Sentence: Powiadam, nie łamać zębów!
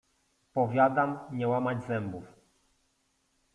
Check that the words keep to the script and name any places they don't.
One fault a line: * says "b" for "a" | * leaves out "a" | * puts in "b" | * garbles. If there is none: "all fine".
all fine